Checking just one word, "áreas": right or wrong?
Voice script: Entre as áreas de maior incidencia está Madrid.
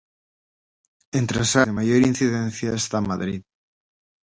wrong